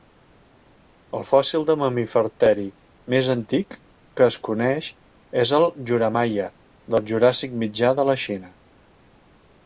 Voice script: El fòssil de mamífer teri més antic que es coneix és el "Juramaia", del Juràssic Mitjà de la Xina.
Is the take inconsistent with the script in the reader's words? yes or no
no